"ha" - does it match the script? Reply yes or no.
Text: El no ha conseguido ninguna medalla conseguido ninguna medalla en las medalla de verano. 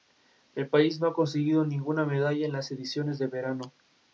yes